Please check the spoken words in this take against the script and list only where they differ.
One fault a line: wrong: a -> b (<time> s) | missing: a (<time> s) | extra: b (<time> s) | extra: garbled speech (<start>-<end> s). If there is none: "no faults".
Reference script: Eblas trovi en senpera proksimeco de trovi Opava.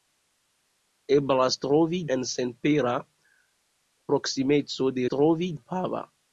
no faults